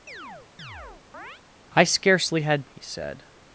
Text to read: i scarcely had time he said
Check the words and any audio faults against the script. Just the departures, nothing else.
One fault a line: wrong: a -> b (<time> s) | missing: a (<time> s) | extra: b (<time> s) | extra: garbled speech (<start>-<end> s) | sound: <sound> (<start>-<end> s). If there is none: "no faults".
sound: chirp (0.1-1.4 s)
missing: time (2.7 s)